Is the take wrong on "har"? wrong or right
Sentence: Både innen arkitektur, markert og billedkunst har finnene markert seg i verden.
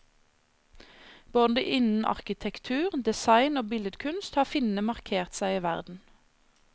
right